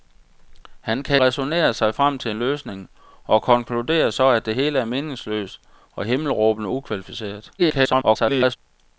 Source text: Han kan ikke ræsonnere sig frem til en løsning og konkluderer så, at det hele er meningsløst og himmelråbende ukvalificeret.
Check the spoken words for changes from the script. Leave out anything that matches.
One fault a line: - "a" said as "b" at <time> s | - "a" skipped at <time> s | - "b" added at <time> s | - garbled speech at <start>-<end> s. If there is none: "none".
- "ikke" skipped at 1.2 s
- garbled speech at 7.6-8.6 s